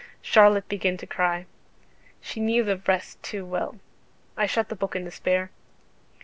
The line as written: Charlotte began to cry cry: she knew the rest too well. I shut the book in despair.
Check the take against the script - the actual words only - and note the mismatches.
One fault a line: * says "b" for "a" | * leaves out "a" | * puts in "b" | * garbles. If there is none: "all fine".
* leaves out "cry"